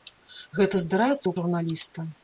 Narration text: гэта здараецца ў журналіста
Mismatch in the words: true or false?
false